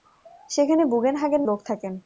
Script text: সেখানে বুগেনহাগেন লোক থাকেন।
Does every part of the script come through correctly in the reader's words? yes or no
yes